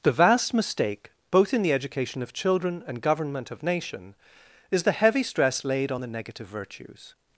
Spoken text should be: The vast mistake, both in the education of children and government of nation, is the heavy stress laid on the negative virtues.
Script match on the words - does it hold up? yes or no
yes